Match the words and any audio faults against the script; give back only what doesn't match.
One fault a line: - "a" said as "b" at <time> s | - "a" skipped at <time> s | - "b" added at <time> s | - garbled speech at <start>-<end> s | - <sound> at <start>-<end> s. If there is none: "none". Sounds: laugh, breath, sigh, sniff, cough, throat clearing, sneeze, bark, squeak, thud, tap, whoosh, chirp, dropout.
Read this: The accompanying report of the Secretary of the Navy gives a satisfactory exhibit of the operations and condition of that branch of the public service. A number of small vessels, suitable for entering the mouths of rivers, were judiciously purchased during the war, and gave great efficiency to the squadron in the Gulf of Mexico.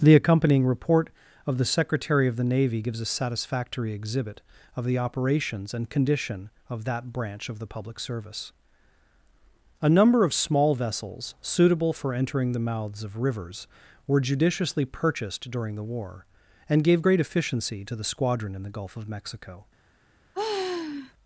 - sigh at 20.3-21.1 s